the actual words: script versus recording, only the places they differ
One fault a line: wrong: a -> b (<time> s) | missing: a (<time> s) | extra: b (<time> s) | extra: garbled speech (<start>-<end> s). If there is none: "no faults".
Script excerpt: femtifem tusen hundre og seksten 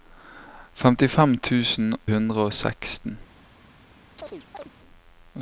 no faults